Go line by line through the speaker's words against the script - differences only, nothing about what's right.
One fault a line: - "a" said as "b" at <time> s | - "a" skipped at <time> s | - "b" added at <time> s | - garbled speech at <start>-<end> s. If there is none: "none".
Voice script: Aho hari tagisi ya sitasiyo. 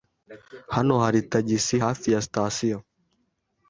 - "Aho" said as "Hano" at 0.8 s
- "hafi" added at 1.8 s